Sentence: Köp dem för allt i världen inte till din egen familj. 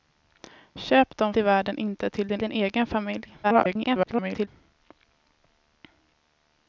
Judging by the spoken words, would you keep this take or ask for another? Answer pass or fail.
fail